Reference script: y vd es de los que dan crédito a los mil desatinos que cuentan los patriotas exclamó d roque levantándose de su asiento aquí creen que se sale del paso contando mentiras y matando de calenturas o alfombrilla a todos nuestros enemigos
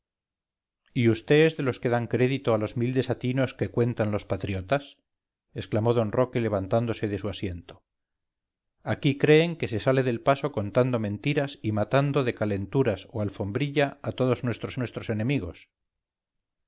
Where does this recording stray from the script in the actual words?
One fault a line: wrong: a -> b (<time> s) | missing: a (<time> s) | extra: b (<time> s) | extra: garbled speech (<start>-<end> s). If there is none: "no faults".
extra: nuestros (14.8 s)